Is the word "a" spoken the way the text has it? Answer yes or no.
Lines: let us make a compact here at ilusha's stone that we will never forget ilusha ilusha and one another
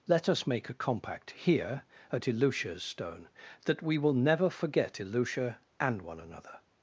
yes